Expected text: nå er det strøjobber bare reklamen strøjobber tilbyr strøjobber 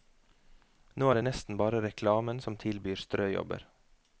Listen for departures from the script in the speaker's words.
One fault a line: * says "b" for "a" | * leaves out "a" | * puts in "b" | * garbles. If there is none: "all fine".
* says "nesten" for "strøjobber"
* says "som" for "strøjobber"